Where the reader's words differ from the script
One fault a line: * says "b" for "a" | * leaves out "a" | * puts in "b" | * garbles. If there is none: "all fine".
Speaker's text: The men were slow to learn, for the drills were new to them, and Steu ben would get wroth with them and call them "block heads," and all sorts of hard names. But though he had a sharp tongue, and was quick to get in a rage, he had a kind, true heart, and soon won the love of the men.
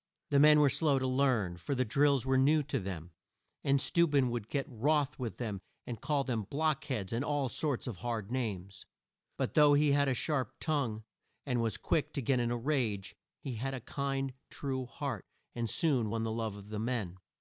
all fine